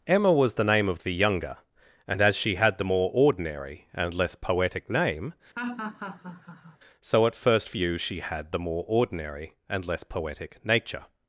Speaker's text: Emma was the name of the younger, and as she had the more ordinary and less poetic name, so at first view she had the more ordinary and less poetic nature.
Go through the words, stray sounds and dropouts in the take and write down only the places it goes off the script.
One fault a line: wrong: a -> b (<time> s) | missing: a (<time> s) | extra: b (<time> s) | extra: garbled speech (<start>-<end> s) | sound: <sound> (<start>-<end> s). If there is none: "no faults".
sound: laugh (5.6-6.8 s)